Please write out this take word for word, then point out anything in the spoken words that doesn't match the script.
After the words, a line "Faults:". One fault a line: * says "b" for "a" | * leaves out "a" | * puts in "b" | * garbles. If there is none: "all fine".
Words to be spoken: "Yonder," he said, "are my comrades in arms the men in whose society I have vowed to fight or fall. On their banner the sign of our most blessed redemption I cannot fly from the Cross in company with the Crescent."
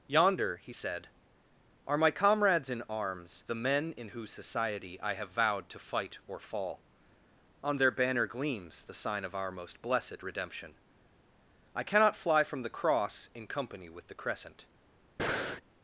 "Yonder," he said, "are my comrades in arms the men in whose society I have vowed to fight or fall. On their banner gleams the sign of our most blessed redemption I cannot fly from the Cross in company with the Crescent."
Faults:
* puts in "gleams"